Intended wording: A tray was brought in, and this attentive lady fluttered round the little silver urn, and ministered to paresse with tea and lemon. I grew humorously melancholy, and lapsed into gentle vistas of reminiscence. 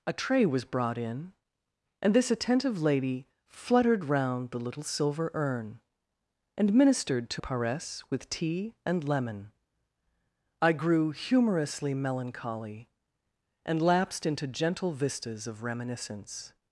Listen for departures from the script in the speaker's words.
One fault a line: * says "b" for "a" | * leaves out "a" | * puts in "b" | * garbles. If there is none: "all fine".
all fine